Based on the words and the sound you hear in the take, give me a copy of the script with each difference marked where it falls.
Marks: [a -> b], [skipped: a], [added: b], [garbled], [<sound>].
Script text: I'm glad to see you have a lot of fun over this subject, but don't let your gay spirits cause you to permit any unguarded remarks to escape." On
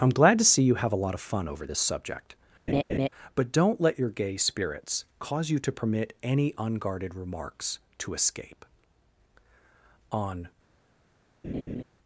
I'm glad to see you have a lot of fun over this subject, [laugh] but don't let your gay spirits cause you to permit any unguarded remarks to escape." On [laugh]